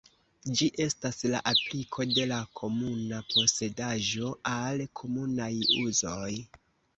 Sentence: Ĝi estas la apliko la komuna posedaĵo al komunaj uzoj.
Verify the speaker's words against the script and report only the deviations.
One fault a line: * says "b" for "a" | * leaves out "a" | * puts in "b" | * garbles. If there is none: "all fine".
* puts in "de"